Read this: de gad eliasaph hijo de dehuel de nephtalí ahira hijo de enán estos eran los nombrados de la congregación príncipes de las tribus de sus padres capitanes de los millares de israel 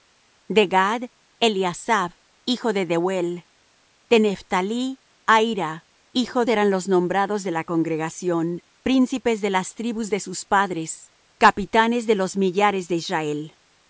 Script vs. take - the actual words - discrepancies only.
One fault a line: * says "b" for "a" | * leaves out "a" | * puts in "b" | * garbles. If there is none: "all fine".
* leaves out "de enán estos"